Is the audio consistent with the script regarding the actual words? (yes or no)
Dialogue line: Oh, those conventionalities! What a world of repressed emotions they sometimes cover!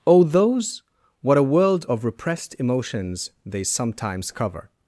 no